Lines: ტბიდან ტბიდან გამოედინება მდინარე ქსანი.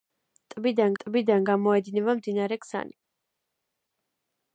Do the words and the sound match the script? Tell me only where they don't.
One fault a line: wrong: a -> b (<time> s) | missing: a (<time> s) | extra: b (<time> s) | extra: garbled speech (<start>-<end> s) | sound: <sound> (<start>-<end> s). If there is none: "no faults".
no faults